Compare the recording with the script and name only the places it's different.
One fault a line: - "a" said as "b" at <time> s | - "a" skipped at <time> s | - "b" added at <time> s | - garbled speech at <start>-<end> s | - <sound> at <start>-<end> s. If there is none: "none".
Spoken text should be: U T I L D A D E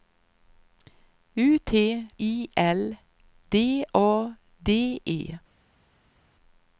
none